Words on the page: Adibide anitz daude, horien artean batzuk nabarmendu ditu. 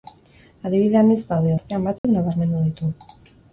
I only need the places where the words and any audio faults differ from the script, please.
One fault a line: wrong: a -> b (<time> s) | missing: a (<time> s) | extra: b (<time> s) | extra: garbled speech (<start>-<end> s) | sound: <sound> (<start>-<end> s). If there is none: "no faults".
missing: horien (1.5 s)
sound: dropout (2.0-2.0 s)